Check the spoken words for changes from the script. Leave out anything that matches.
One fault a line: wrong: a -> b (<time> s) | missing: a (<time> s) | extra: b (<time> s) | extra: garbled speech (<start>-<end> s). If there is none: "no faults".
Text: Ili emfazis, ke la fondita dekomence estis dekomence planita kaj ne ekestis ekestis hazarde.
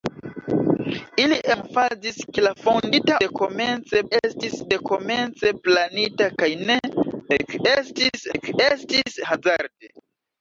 no faults